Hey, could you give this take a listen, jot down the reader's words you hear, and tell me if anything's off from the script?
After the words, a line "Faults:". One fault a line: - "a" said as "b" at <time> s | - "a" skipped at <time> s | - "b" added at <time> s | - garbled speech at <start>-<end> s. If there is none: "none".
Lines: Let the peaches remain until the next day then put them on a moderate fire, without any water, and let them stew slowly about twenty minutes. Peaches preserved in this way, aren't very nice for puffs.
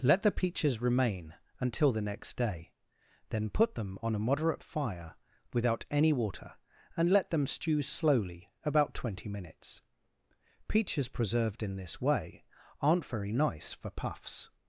Let the peaches remain until the next day then put them on a moderate fire, without any water, and let them stew slowly about twenty minutes. Peaches preserved in this way, aren't very nice for puffs.
Faults:
none